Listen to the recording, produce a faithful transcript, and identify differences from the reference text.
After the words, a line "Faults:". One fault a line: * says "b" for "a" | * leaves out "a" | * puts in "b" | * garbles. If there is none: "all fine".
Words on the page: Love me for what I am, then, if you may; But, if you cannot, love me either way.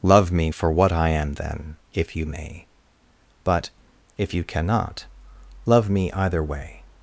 Love me for what I am, then, if you may; But, if you cannot, love me either way.
Faults:
all fine